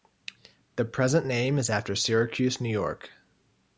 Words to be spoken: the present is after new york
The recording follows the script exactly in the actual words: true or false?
false